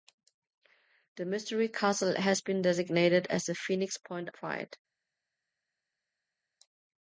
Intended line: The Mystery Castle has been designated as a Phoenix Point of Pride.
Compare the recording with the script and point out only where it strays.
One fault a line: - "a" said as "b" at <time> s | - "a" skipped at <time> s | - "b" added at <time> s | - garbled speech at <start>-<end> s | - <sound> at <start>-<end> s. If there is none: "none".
- "of" skipped at 4.3 s